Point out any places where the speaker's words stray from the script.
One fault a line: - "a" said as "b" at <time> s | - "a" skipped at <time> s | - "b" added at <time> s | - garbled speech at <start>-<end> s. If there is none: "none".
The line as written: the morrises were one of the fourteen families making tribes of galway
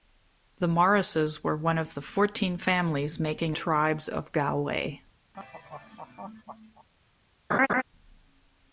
none